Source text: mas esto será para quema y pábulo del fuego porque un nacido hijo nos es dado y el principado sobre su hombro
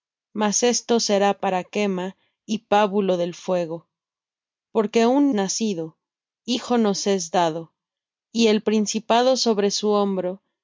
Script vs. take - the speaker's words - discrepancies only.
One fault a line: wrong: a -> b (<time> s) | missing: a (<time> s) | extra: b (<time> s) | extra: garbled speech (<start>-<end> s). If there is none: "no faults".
no faults